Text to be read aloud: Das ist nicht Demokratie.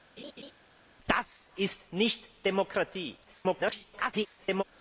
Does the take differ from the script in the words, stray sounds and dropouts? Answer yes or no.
yes